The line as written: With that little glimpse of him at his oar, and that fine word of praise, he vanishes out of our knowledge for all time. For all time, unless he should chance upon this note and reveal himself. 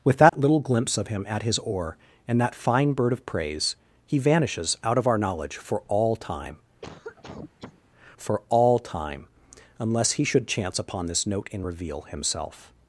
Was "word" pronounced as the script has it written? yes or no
no